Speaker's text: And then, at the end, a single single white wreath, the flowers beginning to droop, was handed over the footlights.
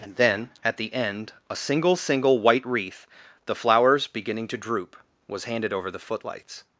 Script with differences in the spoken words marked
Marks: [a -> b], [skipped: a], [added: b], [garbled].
And then, at the end, a single single white wreath, the flowers beginning to droop, was handed over the footlights.